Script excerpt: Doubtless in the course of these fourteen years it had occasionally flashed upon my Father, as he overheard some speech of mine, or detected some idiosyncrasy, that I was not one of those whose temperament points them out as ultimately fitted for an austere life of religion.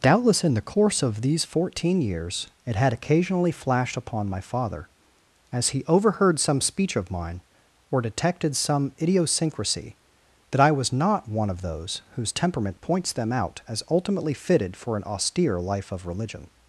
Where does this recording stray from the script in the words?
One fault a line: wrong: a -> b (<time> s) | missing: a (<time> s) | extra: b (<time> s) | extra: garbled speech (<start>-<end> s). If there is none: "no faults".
no faults